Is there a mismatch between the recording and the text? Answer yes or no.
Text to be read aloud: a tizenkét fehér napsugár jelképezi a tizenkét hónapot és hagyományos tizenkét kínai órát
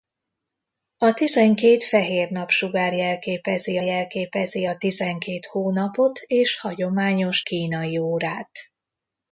yes